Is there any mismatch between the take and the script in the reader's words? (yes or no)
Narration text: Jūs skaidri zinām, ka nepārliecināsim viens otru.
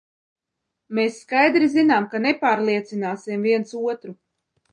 yes